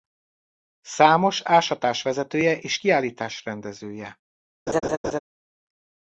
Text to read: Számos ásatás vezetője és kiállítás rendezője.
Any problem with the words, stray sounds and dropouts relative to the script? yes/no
yes